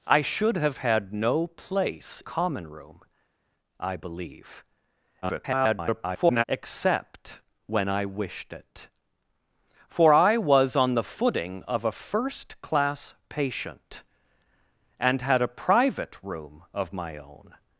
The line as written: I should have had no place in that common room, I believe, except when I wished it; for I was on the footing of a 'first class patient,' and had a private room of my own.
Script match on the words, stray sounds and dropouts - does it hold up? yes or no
no